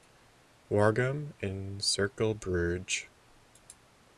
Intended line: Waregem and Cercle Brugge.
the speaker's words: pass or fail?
pass